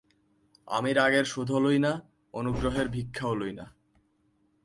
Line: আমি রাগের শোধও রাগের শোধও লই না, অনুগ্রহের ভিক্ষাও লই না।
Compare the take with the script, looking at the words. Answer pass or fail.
fail